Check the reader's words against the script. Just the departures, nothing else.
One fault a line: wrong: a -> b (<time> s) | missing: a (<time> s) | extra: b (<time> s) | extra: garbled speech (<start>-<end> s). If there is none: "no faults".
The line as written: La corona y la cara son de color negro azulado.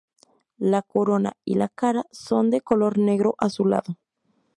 no faults